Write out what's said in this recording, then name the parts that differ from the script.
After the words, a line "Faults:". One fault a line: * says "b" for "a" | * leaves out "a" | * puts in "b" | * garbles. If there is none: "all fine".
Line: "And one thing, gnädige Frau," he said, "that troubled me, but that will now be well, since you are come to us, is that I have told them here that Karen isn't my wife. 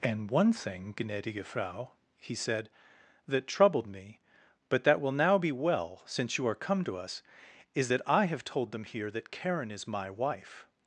"And one thing, gnädige Frau," he said, "that troubled me, but that will now be well, since you are come to us, is that I have told them here that Karen is my wife.
Faults:
* says "is" for "isn't"